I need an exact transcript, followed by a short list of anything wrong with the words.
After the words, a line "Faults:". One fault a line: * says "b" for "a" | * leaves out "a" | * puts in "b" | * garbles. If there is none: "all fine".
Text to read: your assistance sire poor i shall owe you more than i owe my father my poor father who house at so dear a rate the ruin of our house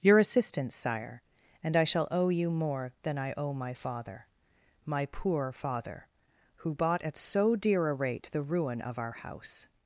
your assistance sire and i shall owe you more than i owe my father my poor father who bought at so dear a rate the ruin of our house
Faults:
* says "and" for "poor"
* says "bought" for "house"